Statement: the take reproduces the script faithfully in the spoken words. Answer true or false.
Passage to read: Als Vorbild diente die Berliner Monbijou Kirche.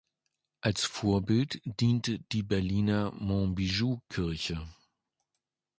true